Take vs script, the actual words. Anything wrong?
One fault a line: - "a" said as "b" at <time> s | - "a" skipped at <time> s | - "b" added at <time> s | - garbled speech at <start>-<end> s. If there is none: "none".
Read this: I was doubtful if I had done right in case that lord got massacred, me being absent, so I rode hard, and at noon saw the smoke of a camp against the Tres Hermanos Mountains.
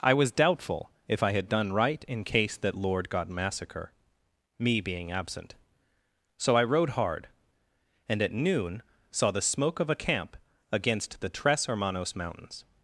- "massacred" said as "massacre" at 3.3 s